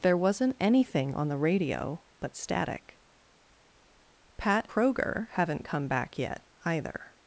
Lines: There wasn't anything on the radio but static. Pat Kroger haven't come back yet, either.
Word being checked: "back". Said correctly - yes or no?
yes